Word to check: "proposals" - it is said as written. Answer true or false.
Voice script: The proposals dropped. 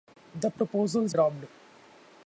true